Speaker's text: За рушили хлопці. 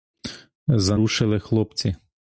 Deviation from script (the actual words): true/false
false